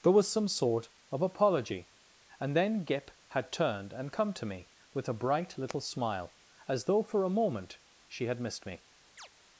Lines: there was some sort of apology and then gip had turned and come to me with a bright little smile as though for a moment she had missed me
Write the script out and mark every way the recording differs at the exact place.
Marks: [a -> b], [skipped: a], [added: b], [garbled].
there was some sort of apology and then gip had turned and come to me with a bright little smile as though for a moment she had missed me